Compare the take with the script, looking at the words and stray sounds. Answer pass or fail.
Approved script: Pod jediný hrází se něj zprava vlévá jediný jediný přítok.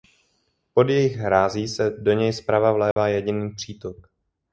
fail